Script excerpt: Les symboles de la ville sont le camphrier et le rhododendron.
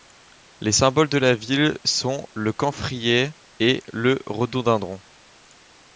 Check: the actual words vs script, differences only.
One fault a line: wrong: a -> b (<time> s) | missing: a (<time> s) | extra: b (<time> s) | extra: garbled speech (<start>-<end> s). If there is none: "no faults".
no faults